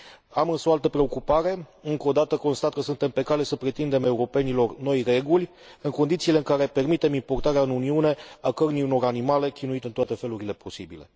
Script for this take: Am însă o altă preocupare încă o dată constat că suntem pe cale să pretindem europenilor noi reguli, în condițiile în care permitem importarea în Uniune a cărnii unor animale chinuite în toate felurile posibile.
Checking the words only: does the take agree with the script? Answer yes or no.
yes